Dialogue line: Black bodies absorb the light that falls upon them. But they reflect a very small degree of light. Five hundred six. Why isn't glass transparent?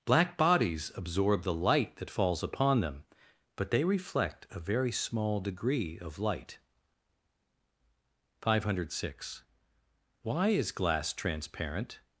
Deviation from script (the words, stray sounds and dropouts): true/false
true